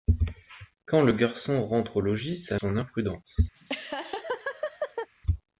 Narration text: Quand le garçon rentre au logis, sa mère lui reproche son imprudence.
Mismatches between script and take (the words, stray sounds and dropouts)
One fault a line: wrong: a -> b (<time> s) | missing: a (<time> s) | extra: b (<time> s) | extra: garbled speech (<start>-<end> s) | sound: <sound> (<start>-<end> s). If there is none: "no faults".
missing: mère lui reproche (2.6 s)
sound: laugh (3.5-5.1 s)